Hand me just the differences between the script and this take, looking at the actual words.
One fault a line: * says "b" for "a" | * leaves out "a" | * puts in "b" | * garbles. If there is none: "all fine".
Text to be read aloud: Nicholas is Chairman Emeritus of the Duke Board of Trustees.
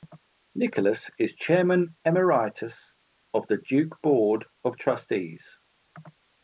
all fine